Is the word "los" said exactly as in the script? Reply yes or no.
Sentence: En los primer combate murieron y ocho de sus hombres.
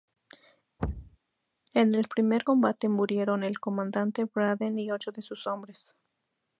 no